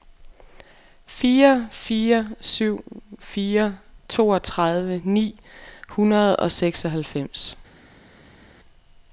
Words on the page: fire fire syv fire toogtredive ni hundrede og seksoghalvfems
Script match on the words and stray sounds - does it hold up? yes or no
yes